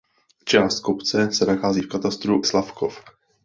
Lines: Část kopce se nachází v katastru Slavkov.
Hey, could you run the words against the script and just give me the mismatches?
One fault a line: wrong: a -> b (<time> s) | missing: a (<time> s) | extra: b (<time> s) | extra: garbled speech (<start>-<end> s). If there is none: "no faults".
no faults